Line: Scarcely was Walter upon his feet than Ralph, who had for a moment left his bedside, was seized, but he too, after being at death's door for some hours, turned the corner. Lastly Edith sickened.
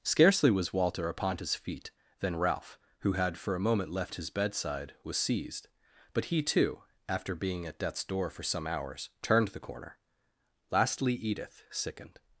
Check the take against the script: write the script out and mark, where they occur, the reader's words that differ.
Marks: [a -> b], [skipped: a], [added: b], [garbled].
Scarcely was Walter upon his feet than Ralph, who had for a moment left his bedside, was seized, but he too, after being at death's door for some hours, turned the corner. Lastly Edith sickened.